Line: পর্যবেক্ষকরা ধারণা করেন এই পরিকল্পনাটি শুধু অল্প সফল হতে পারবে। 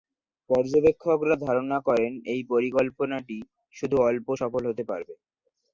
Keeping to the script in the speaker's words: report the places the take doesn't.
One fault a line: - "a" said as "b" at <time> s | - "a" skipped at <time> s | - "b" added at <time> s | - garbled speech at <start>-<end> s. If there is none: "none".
none